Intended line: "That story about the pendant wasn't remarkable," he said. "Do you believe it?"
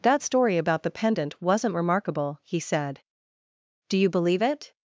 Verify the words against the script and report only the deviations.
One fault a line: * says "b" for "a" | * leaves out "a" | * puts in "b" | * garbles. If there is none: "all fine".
all fine